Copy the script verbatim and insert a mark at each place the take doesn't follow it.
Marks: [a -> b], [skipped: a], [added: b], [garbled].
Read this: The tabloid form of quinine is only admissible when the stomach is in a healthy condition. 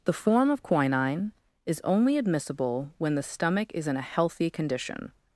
The [skipped: tabloid] form of quinine is only admissible when the stomach is in a healthy condition.